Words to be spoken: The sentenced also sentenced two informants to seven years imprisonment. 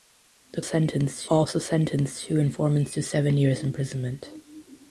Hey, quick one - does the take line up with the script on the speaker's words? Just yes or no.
yes